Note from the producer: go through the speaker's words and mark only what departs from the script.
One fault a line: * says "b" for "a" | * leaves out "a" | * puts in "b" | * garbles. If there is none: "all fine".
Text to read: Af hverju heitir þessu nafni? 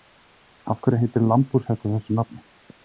* puts in "lambhúshetta"